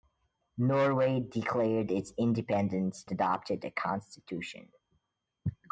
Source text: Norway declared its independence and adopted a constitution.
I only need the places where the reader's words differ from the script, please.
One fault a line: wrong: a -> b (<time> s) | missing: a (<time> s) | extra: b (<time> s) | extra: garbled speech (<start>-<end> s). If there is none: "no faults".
missing: and (3.0 s)